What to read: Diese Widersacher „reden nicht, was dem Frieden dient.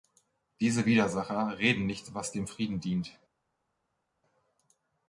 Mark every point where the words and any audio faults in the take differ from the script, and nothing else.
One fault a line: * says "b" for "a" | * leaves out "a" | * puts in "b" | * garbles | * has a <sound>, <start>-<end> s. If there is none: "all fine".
all fine